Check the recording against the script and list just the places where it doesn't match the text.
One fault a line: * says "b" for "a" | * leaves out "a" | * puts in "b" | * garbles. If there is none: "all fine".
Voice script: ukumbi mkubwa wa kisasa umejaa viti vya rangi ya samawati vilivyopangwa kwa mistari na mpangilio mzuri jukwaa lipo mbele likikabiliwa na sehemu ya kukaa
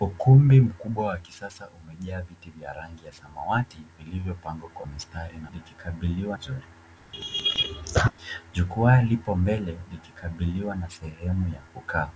* says "likikabiliwa" for "mpangilio"